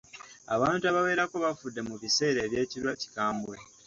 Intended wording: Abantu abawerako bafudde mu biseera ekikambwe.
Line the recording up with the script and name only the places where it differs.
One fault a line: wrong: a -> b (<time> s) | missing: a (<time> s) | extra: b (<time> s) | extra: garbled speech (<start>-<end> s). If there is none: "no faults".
no faults